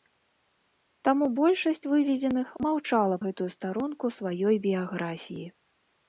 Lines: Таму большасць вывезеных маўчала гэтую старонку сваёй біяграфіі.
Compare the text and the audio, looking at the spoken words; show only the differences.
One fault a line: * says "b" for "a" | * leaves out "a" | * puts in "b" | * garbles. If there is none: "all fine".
all fine